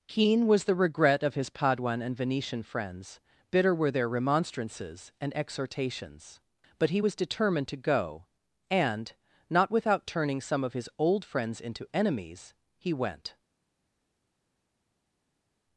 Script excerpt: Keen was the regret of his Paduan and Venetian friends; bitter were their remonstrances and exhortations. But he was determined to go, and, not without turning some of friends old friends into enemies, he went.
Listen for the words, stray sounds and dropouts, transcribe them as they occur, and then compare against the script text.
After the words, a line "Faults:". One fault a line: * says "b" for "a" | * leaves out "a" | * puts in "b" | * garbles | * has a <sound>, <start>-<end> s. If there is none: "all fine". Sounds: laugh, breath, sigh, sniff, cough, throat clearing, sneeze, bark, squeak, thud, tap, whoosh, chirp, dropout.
Keen was the regret of his Paduan and Venetian friends; bitter were their remonstrances and exhortations. But he was determined to go, and, not without turning some of his old friends into enemies, he went.
Faults:
* says "his" for "friends"